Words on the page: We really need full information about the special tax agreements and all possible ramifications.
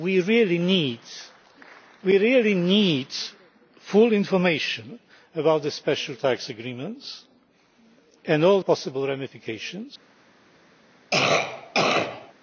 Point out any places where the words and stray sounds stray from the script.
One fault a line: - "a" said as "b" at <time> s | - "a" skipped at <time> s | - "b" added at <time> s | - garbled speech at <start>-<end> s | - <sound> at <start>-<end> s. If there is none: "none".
- cough at 11.1-12.3 s